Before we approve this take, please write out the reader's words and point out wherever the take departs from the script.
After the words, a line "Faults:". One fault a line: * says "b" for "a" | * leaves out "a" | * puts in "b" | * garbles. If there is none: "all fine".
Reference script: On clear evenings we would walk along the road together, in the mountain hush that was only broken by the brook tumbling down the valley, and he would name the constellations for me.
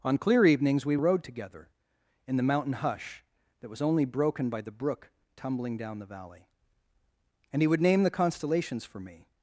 On clear evenings we the road together, in the mountain hush that was only broken by the brook tumbling down the valley, and he would name the constellations for me.
Faults:
* leaves out "would walk along"